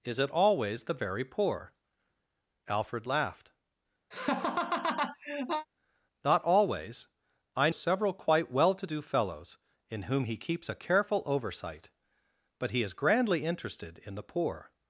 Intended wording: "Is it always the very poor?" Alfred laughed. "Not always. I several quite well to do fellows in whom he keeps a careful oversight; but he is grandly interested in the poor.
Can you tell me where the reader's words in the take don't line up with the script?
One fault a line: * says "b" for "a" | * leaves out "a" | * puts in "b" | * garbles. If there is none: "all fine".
all fine